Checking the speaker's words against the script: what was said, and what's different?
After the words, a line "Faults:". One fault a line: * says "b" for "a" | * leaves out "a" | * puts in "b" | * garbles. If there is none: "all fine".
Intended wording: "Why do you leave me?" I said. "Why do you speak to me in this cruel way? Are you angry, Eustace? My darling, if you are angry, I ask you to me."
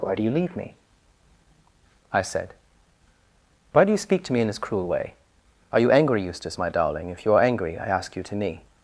"Why do you leave me?" I said. "Why do you speak to me in this cruel way? Are you angry, Eustace? My darling, if you are angry, I ask you to me."
Faults:
all fine